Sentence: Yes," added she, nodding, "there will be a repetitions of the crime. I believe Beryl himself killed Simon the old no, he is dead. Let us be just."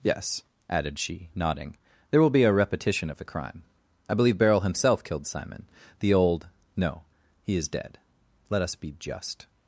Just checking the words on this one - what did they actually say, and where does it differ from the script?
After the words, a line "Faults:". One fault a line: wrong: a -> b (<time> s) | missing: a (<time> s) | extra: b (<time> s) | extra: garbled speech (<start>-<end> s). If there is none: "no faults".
Yes," added she, nodding, "there will be a repetition of the crime. I believe Beryl himself killed Simon the old no, he is dead. Let us be just."
Faults:
wrong: repetitions -> repetition (2.5 s)